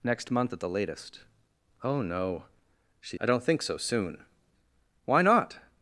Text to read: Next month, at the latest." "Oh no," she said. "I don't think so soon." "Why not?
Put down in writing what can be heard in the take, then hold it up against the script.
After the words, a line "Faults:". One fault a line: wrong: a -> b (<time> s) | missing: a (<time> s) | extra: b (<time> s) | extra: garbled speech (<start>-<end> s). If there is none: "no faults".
Next month, at the latest." "Oh no," she. "I don't think so soon." "Why not?
Faults:
missing: said (3.2 s)